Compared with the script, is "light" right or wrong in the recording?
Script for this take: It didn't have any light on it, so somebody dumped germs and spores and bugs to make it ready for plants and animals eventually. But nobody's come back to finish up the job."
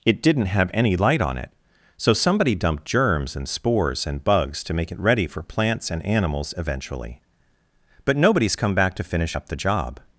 right